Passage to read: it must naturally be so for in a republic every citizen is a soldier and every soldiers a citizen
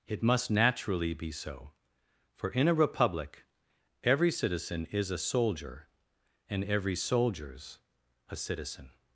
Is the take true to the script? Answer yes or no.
yes